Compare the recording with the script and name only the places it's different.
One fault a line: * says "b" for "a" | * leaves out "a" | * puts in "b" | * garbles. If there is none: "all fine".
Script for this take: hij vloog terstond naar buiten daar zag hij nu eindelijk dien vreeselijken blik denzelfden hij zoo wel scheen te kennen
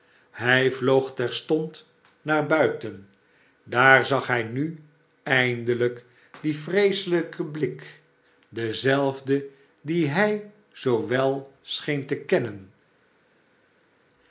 * puts in "dien"